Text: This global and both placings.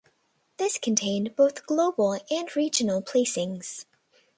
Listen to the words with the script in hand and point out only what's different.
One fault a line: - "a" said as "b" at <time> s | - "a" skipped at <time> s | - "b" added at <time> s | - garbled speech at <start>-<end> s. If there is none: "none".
- "contained both" added at 0.8 s
- "both" said as "regional" at 2.5 s